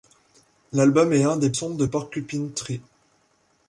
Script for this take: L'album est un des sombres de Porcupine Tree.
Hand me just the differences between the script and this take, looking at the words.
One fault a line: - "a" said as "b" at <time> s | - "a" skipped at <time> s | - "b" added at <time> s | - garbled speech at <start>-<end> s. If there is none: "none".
none